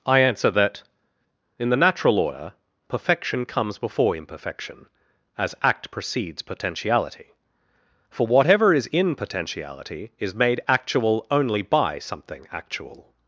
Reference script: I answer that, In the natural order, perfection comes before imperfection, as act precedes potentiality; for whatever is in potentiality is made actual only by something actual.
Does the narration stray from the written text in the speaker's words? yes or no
no